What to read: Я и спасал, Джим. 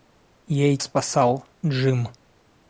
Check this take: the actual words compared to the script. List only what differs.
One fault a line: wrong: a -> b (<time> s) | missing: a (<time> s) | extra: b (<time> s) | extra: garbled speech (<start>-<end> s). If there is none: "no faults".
no faults